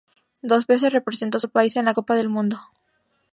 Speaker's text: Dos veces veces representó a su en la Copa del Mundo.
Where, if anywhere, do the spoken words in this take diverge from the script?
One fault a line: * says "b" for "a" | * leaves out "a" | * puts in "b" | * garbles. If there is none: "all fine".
* leaves out "veces"
* puts in "país"